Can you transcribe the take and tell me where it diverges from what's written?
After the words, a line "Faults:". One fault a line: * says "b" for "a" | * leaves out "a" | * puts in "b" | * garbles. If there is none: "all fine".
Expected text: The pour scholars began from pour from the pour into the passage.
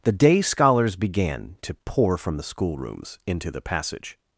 The day scholars began to pour from the schoolrooms into the passage.
Faults:
* says "day" for "pour"
* says "to" for "from"
* says "schoolrooms" for "pour"